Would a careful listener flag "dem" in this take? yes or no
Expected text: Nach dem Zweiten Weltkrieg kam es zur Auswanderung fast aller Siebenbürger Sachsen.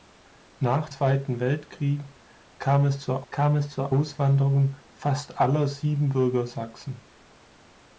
yes